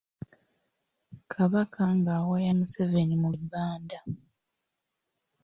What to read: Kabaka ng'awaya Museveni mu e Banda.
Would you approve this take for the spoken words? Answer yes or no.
yes